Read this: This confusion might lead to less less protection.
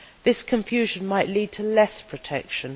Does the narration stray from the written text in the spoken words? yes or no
yes